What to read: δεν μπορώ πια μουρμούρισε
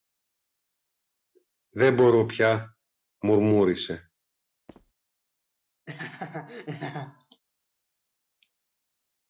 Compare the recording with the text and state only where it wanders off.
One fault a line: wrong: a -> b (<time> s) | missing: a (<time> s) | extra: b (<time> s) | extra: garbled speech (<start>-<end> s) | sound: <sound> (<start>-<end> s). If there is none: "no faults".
sound: squeak (4.7-4.9 s)
sound: laugh (5.9-7.4 s)